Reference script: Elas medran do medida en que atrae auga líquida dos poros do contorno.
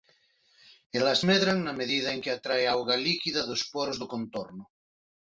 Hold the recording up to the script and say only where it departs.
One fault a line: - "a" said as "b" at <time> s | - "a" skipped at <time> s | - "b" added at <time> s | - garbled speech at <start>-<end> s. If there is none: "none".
- "do" said as "na" at 1.6 s